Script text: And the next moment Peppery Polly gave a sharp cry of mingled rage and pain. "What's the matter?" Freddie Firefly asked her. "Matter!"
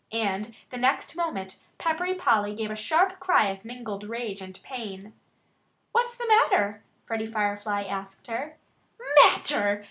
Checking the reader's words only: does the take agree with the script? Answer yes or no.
yes